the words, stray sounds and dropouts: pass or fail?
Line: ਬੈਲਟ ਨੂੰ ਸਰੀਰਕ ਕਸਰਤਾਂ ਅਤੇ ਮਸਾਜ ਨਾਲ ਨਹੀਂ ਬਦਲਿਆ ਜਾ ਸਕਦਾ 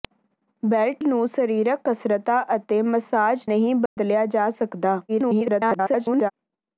fail